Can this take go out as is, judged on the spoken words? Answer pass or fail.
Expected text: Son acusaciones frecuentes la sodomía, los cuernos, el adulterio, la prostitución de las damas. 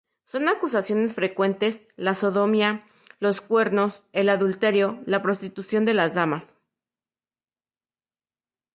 pass